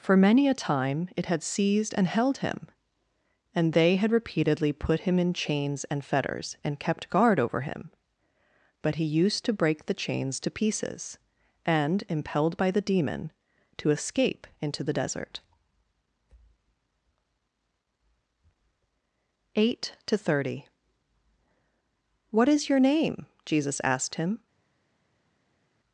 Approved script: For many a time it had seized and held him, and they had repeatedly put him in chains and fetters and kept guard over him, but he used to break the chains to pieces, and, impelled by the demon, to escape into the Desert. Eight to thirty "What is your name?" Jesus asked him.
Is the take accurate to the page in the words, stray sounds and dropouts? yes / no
yes